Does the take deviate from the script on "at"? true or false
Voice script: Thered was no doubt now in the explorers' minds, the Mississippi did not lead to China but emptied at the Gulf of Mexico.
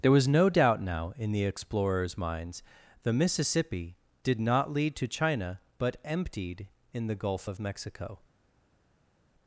true